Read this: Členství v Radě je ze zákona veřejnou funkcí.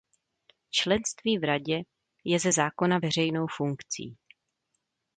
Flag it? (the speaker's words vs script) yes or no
no